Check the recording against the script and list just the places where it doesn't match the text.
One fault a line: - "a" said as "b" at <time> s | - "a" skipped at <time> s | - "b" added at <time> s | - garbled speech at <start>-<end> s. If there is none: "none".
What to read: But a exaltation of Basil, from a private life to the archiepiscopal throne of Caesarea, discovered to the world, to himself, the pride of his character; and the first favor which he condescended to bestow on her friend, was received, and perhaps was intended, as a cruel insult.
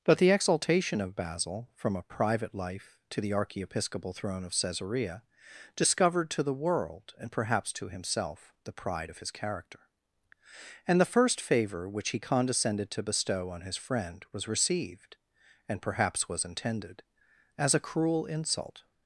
- "a" said as "the" at 0.2 s
- "and perhaps" added at 7.2 s
- "her" said as "his" at 13.6 s